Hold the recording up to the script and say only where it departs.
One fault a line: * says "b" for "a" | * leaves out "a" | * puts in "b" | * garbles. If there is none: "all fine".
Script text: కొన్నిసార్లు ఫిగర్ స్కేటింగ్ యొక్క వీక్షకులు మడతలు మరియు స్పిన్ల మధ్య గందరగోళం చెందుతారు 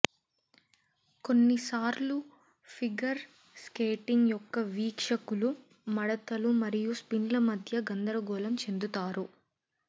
all fine